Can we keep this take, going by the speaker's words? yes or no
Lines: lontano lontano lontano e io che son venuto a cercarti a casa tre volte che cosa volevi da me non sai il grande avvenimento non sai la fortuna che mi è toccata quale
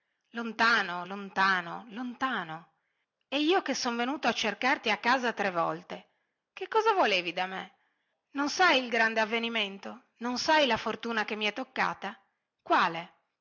yes